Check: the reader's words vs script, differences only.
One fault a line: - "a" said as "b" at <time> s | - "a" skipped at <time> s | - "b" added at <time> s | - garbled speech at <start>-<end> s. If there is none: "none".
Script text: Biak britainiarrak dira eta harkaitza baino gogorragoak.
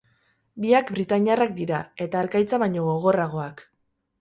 none